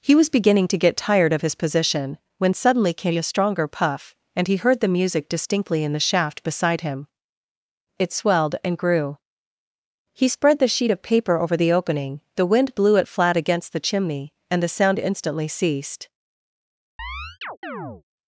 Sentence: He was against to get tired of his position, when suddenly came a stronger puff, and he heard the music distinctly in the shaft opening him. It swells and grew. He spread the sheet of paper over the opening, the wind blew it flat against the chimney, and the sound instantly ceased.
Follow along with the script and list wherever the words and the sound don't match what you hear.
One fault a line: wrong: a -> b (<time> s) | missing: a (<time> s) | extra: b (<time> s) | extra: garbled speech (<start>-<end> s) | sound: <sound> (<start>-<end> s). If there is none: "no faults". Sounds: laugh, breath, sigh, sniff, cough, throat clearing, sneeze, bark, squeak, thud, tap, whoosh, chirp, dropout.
wrong: against -> beginning (0.3 s)
wrong: opening -> beside (6.4 s)
wrong: swells -> swelled (8.1 s)
sound: chirp (17.0-18.0 s)